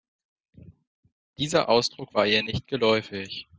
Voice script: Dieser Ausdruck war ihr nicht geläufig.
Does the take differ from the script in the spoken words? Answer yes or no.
no